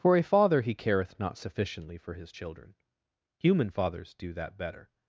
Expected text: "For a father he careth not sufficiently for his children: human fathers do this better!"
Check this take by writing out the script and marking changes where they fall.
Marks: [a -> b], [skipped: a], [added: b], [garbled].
"For a father he careth not sufficiently for his children: human fathers do [this -> that] better!"